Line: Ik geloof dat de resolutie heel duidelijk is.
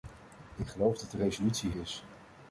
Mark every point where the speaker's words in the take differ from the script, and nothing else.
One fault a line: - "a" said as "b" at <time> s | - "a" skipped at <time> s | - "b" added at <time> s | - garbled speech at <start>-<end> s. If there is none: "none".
- "heel duidelijk" skipped at 1.7 s